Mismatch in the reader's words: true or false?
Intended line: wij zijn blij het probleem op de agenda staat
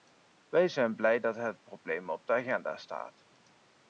true